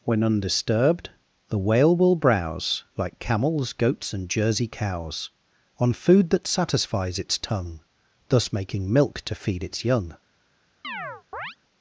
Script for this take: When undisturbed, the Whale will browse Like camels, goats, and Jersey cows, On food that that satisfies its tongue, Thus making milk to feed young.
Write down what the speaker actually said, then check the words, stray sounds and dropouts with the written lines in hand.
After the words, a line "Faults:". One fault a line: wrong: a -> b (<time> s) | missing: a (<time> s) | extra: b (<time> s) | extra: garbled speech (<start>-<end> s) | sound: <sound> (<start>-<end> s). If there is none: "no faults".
When undisturbed, the Whale will browse Like camels, goats, and Jersey cows, On food that satisfies its tongue, Thus making milk to feed its young.
Faults:
missing: that (6.5 s)
extra: its (9.6 s)
sound: chirp (10.8-11.6 s)